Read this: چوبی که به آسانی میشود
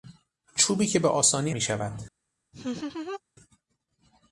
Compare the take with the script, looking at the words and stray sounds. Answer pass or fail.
fail